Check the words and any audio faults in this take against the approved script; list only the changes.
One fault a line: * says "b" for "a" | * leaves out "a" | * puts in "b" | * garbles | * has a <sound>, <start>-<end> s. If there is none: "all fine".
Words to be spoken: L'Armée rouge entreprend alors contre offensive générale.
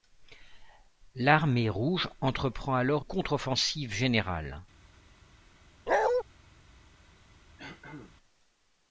* has a bark, 5.9-6.2 s
* has a throat clearing, 7.6-8.2 s